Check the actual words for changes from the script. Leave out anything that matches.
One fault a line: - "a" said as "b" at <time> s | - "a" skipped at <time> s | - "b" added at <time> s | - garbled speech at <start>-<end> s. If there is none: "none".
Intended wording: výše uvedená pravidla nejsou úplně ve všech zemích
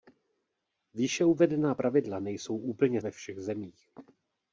none